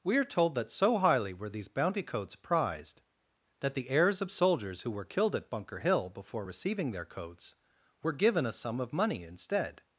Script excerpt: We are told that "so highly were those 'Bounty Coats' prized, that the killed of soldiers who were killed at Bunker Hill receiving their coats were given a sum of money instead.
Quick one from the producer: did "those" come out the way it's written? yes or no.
no